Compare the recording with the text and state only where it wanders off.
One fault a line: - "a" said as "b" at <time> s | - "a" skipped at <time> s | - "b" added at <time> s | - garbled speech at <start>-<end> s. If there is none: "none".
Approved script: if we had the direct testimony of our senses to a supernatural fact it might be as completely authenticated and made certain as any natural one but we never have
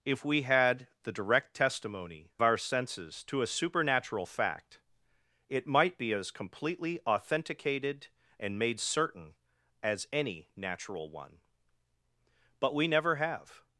- "of" skipped at 2.3 s